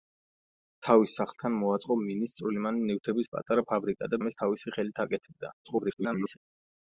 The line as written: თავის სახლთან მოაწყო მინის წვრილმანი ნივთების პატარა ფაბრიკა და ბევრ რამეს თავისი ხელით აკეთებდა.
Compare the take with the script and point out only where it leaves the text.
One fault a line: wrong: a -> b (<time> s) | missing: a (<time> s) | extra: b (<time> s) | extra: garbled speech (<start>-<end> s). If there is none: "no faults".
missing: ბევრ (4.2 s)
extra: garbled speech (5.6-6.4 s)